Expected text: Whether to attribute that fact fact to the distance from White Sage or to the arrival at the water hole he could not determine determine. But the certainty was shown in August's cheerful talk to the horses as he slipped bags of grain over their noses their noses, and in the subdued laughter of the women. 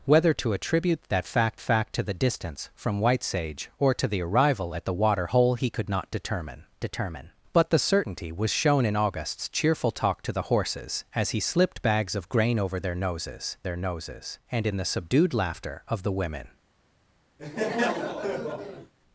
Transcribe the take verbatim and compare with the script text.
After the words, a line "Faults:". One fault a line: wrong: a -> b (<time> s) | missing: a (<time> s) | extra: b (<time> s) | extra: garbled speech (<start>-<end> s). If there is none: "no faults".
Whether to attribute that fact fact to the distance from White Sage or to the arrival at the water hole he could not determine determine. But the certainty was shown in August's cheerful talk to the horses as he slipped bags of grain over their noses their noses, and in the subdued laughter of the women.
Faults:
no faults